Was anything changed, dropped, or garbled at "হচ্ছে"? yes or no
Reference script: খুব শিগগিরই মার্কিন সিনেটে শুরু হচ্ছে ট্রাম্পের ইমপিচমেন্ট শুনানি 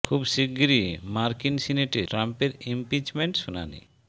yes